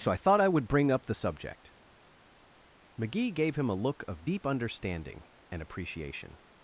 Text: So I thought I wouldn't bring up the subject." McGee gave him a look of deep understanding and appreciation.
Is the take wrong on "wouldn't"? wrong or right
wrong